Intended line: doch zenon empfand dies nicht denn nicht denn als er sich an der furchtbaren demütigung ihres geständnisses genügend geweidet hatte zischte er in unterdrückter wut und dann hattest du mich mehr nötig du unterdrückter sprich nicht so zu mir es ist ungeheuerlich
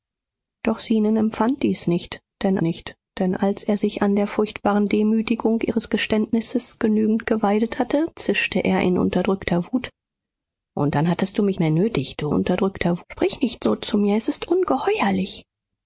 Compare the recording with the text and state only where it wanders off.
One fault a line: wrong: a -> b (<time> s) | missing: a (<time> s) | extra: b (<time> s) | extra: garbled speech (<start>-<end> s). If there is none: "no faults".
no faults